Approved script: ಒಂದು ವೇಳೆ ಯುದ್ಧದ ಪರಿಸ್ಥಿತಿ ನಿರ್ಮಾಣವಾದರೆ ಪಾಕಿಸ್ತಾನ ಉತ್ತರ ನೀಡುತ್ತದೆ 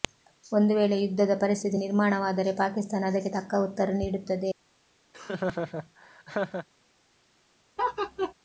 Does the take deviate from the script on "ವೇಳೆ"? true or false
false